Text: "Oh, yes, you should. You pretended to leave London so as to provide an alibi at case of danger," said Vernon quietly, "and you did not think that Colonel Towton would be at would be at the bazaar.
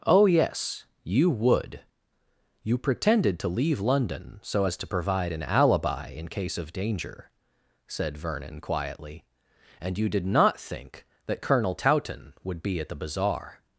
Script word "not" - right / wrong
right